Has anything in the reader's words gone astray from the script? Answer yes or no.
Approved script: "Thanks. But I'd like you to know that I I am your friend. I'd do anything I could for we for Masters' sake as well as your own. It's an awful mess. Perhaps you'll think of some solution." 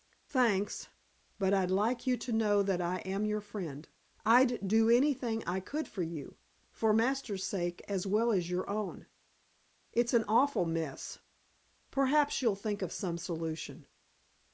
yes